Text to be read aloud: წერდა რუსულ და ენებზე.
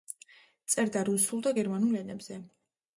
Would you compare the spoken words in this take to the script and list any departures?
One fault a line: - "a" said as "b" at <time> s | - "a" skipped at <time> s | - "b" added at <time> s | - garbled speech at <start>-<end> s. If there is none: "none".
- "გერმანულ" added at 1.6 s